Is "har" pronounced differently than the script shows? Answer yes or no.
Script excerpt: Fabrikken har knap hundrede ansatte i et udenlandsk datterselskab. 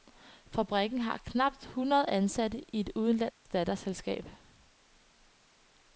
no